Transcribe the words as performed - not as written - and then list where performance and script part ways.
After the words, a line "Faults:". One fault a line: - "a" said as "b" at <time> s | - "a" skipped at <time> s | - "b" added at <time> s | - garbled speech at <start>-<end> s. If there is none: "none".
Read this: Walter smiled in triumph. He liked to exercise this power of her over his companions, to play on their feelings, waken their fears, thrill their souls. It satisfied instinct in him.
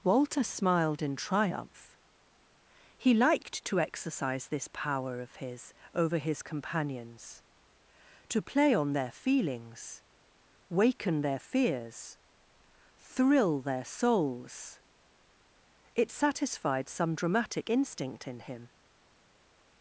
Walter smiled in triumph. He liked to exercise this power of his over his companions, to play on their feelings, waken their fears, thrill their souls. It satisfied some dramatic instinct in him.
Faults:
- "her" said as "his" at 5.3 s
- "some dramatic" added at 16.9 s